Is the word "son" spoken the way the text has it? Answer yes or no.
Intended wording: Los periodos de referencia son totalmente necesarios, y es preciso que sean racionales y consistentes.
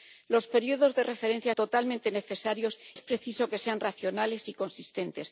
no